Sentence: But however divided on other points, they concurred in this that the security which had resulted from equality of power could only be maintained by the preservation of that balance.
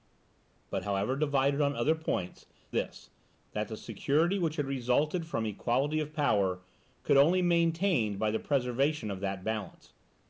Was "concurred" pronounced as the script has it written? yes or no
no